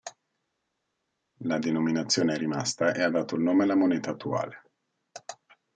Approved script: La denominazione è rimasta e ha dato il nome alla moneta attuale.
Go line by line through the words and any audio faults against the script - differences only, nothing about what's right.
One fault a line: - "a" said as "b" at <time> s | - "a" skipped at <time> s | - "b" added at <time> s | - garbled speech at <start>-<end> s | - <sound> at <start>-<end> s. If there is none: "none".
none